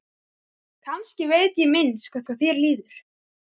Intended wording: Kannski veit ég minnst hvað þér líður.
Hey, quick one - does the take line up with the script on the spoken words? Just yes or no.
no